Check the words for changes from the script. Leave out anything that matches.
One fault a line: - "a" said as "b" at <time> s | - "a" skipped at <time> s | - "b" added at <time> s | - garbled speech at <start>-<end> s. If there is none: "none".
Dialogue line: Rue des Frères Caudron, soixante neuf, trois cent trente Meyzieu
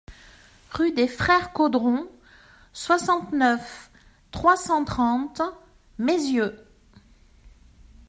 none